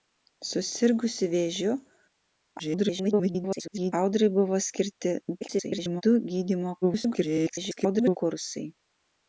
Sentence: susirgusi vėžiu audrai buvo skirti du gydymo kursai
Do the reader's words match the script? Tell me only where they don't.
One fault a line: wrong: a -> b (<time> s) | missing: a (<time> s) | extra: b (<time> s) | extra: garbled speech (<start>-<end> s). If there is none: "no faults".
extra: garbled speech (2.6-3.9 s)
extra: garbled speech (5.4-6.0 s)
extra: garbled speech (6.8-8.2 s)